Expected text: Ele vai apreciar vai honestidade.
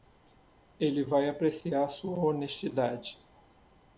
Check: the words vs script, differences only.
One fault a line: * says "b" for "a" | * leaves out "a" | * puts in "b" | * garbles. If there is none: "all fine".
* says "sua" for "vai"